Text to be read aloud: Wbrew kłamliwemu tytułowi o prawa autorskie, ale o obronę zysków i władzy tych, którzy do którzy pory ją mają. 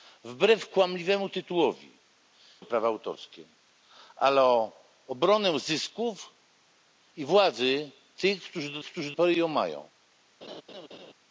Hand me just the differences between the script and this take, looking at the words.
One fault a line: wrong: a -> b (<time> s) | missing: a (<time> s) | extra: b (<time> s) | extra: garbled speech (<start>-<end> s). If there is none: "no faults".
no faults